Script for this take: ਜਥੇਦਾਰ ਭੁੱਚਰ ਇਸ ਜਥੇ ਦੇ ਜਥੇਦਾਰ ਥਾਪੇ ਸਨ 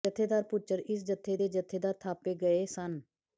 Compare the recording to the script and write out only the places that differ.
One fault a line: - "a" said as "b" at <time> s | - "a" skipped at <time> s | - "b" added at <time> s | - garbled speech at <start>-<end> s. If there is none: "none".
- "ਗਏ" added at 2.3 s